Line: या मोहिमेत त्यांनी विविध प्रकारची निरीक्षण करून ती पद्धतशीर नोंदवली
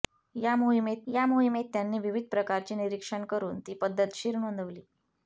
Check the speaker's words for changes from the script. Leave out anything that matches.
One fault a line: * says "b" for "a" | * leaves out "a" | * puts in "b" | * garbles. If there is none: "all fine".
* puts in "या मोहिमेत"